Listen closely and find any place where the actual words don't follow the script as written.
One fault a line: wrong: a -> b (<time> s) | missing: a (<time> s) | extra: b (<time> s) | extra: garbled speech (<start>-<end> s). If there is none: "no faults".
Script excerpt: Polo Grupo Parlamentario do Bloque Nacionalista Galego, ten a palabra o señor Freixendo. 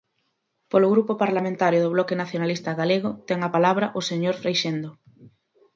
no faults